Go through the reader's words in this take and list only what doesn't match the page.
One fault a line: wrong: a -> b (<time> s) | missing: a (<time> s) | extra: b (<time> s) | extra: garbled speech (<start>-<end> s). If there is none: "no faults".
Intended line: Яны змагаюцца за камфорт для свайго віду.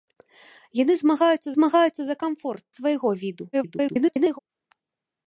extra: змагаюцца (1.5 s)
missing: для (2.6 s)
extra: garbled speech (3.5-4.4 s)